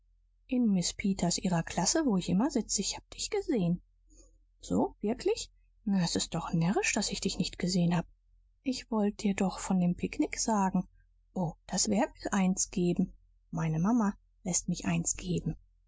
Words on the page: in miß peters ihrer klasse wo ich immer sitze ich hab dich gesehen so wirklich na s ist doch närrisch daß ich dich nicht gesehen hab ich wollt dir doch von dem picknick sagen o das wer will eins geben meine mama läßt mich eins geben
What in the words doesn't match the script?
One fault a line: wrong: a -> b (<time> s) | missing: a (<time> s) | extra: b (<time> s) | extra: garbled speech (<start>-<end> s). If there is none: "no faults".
no faults